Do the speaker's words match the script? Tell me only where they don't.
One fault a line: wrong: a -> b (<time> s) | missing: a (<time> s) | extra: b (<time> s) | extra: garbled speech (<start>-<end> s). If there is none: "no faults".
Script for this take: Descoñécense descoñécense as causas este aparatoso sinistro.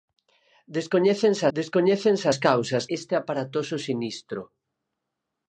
no faults